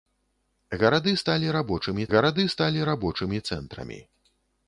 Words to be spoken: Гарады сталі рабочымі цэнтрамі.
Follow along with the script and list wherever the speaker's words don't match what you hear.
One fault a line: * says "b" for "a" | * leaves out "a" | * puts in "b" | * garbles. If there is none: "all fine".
* puts in "гарады сталі рабочымі"